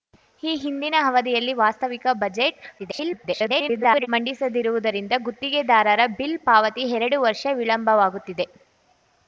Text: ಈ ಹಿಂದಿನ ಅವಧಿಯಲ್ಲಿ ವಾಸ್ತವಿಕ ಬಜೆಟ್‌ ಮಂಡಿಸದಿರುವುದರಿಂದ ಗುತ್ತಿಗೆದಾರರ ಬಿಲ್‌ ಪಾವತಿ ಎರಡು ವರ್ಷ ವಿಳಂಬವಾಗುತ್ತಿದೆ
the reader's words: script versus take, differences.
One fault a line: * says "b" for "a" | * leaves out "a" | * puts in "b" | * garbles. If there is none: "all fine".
* garbles